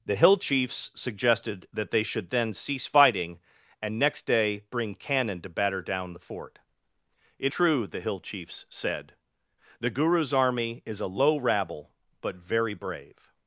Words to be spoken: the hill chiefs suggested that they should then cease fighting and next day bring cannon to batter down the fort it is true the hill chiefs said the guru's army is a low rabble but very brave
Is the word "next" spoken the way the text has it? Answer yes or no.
yes